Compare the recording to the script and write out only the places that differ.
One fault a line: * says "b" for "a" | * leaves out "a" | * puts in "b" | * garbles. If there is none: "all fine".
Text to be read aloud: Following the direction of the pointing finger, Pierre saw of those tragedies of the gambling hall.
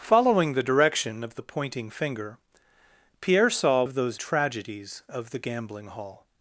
all fine